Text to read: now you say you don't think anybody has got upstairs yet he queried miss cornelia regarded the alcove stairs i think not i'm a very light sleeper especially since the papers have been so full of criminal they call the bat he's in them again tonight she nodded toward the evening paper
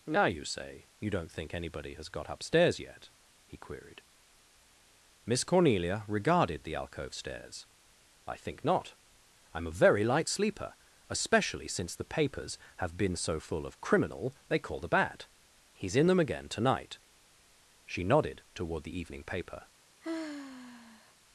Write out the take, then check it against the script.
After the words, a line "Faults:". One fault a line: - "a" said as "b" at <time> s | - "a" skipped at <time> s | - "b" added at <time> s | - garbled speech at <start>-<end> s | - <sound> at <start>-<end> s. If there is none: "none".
now you say you don't think anybody has got upstairs yet he queried miss cornelia regarded the alcove stairs i think not i'm a very light sleeper especially since the papers have been so full of criminal they call the bat he's in them again tonight she nodded toward the evening paper
Faults:
- sigh at 20.0-21.1 s